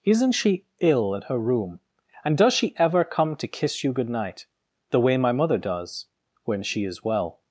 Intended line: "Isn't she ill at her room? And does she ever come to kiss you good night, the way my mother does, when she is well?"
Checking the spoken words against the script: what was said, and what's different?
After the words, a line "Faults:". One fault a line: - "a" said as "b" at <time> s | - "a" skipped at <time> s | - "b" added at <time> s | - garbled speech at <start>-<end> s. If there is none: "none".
"Isn't she ill at her room? And does she ever come to kiss you good night, the way my mother does, when she is well?"
Faults:
none